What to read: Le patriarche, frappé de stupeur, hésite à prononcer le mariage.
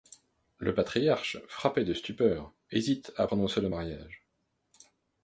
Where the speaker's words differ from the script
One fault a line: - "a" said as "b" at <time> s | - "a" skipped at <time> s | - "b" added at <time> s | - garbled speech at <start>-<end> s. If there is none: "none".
none